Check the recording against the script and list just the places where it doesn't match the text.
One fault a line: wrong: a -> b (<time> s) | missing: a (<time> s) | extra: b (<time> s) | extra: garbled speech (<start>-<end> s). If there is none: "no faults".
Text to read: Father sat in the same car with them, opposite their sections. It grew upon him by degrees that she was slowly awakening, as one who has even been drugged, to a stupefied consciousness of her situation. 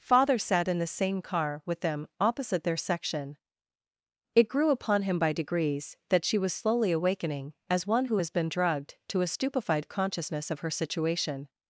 wrong: sections -> section (2.8 s)
missing: even (8.3 s)